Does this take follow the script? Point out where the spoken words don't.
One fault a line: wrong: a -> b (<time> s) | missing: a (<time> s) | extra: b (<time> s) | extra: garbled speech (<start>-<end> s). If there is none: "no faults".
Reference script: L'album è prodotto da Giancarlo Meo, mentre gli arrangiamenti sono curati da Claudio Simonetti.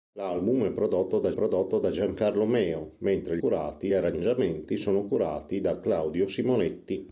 extra: prodotto da (1.3 s)
wrong: gli -> curati (3.4 s)